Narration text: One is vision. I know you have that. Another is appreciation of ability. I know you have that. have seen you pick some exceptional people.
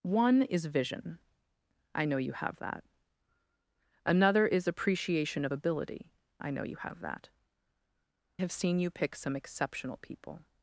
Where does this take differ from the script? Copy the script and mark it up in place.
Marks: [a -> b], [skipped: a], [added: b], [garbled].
One is vision. I know you have that. Another is appreciation of ability. I know you have that. have seen you pick some exceptional people.